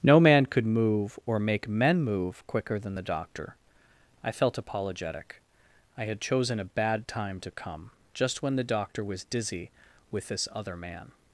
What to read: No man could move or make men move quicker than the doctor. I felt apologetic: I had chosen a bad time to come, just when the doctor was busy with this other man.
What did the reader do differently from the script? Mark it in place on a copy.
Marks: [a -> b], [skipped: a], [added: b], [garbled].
No man could move or make men move quicker than the doctor. I felt apologetic: I had chosen a bad time to come, just when the doctor was [busy -> dizzy] with this other man.